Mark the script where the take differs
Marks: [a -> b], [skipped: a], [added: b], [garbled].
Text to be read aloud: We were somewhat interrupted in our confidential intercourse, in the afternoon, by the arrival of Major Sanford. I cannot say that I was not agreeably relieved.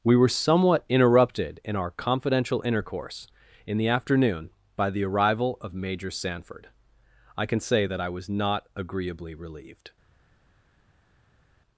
We were somewhat interrupted in our confidential intercourse, in the afternoon, by the arrival of Major Sanford. I [cannot -> can] say that I was not agreeably relieved.